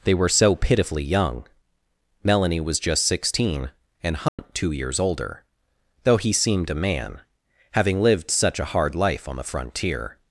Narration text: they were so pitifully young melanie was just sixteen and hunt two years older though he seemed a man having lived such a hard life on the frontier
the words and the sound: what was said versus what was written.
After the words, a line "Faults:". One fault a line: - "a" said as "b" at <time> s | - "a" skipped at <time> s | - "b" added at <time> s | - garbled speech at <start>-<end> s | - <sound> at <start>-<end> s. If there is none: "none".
they were so pitifully young melanie was just sixteen and hunt two years older though he seemed a man having lived such a hard life on the frontier
Faults:
- dropout at 4.3-4.4 s